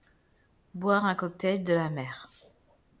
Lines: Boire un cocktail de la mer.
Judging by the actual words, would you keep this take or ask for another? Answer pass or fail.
pass